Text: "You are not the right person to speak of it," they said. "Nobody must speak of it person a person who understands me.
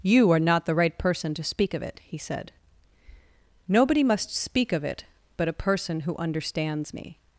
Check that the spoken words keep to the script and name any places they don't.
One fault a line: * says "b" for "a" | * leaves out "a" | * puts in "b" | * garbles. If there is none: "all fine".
* says "he" for "they"
* says "but" for "person"